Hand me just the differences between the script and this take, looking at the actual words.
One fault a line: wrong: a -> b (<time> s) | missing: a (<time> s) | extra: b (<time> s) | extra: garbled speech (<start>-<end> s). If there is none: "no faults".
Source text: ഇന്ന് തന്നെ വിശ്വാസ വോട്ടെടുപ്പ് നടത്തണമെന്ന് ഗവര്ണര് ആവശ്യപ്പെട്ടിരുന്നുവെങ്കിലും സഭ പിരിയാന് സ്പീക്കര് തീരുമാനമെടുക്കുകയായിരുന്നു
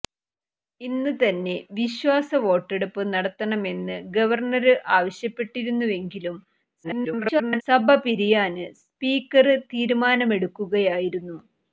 extra: garbled speech (6.8-7.6 s)